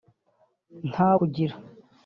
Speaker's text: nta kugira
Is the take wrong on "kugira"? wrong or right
right